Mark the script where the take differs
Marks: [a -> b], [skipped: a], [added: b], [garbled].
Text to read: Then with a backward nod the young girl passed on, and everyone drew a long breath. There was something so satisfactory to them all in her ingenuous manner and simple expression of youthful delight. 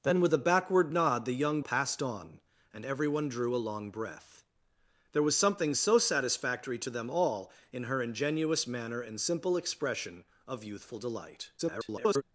Then with a backward nod the young [skipped: girl] passed on, and everyone drew a long breath. There was something so satisfactory to them all in her ingenuous manner and simple expression of youthful delight. [garbled]